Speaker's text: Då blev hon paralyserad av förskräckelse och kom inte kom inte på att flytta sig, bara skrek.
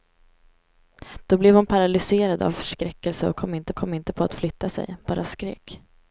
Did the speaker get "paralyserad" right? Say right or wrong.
right